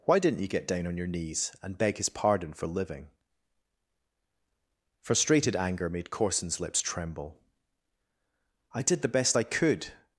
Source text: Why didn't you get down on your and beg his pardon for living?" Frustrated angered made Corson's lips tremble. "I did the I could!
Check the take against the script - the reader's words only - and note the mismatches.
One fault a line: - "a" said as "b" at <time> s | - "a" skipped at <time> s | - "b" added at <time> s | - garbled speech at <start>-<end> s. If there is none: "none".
- "knees" added at 1.1 s
- "angered" said as "anger" at 5.5 s
- "best" added at 9.1 s